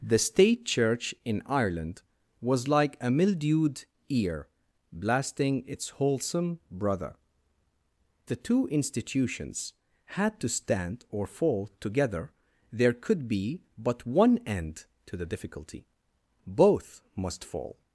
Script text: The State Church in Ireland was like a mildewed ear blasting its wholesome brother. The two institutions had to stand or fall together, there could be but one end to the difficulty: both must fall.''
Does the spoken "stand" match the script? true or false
true